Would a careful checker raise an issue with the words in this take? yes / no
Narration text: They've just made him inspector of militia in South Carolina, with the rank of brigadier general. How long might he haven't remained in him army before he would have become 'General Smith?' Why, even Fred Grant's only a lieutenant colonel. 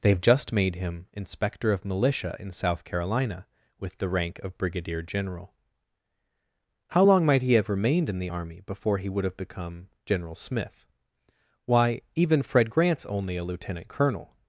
yes